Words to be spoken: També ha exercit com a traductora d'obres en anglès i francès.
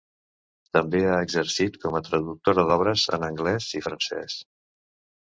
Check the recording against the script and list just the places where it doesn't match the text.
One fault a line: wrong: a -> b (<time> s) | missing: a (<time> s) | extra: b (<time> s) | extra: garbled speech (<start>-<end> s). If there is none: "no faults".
no faults